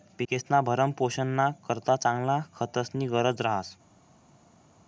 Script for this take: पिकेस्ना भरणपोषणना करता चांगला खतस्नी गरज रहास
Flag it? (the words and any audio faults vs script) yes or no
no